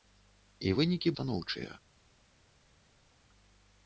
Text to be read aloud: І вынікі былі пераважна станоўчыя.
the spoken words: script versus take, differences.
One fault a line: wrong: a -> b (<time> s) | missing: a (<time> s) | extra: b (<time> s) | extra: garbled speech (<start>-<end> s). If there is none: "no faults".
missing: былі пераважна (1.1 s)